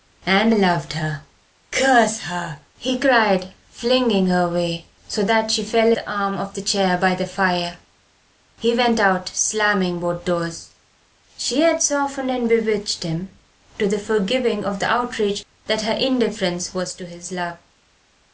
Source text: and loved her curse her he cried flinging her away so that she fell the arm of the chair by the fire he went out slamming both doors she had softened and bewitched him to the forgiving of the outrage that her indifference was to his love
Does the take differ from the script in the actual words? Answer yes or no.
no